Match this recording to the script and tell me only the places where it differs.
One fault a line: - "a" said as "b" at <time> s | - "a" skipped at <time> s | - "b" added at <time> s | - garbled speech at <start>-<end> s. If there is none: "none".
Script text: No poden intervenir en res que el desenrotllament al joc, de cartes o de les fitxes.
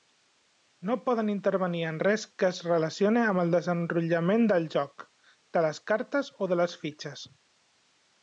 - "es relacione amb" added at 2.5 s
- "al" said as "del" at 4.5 s
- "les" added at 5.7 s